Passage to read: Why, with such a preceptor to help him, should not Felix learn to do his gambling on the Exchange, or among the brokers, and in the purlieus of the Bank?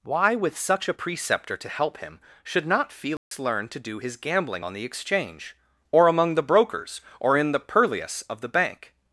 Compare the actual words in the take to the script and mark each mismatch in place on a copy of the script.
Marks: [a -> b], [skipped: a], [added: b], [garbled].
Why, with such a preceptor to help him, should not Felix learn to do his gambling on the Exchange, or among the brokers, [and -> or] in the purlieus of the Bank?